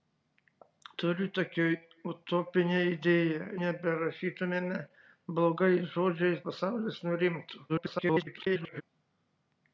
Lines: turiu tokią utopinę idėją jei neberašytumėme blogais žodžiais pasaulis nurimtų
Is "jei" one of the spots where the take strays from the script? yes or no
yes